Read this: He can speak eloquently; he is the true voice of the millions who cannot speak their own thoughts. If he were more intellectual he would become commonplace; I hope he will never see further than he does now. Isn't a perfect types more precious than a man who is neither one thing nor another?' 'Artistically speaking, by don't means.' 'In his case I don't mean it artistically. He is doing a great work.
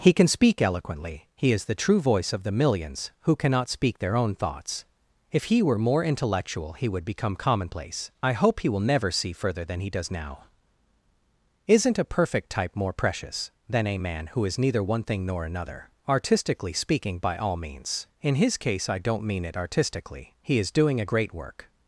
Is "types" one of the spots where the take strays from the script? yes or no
yes